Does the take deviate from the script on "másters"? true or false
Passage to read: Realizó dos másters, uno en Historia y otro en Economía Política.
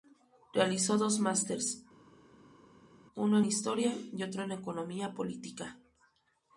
false